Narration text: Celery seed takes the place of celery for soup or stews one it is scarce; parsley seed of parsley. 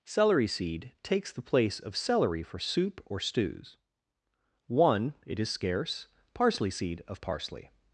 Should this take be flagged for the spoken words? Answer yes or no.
no